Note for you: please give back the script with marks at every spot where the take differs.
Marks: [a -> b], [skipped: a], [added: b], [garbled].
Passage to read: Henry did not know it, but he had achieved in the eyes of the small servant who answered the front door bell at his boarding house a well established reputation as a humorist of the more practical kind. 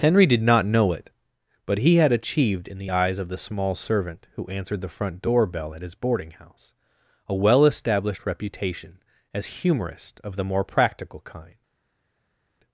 Henry did not know it, but he had achieved in the eyes of the small servant who answered the front door bell at his boarding house a well established reputation as [skipped: a] humorist of the more practical kind.